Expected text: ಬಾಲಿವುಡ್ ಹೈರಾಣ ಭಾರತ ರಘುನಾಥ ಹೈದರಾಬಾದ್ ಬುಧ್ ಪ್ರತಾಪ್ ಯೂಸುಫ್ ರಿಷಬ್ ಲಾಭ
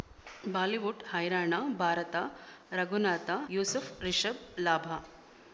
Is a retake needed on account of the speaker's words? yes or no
yes